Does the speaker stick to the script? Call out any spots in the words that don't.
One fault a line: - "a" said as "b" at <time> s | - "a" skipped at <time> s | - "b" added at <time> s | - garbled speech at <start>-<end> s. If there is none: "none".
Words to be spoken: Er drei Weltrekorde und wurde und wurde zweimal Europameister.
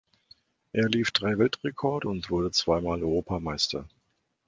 - "lief" added at 0.9 s
- "und wurde" skipped at 2.5 s